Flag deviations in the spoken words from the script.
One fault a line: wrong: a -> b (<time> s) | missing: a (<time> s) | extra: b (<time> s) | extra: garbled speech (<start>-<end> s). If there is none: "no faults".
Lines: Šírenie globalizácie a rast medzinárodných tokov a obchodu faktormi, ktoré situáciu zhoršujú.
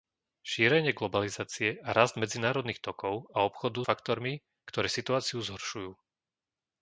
no faults